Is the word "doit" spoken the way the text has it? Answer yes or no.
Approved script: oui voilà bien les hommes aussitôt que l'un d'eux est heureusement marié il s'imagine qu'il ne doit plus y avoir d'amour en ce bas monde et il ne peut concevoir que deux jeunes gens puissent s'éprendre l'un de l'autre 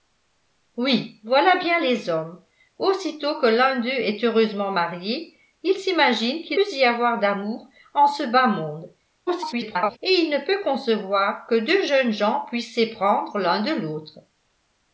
no